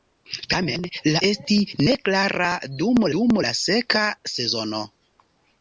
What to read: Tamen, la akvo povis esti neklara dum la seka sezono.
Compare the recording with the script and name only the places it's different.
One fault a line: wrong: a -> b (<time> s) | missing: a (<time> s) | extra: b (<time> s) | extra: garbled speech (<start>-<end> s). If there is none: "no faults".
missing: akvo povis (1.2 s)
extra: dum (3.2 s)